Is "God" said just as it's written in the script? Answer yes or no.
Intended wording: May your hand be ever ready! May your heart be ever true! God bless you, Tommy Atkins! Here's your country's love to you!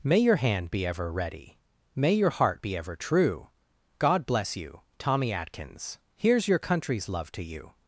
yes